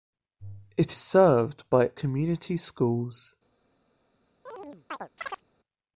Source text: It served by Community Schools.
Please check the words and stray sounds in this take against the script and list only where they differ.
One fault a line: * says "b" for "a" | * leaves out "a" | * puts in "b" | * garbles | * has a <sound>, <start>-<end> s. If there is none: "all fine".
* has a chirp, 4.5-5.4 s